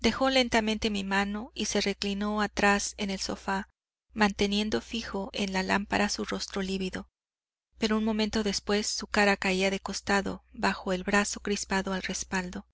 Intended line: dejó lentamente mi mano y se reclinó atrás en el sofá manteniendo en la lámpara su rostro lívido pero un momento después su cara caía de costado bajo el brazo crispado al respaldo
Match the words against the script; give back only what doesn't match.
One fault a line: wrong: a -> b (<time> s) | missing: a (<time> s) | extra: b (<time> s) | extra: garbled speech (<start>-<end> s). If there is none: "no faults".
extra: fijo (4.8 s)